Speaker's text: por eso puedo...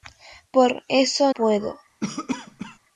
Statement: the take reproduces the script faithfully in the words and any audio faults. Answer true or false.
false